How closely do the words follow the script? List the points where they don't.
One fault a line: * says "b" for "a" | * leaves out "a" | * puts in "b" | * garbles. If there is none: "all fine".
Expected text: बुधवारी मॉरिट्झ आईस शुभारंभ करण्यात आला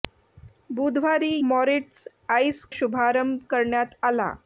all fine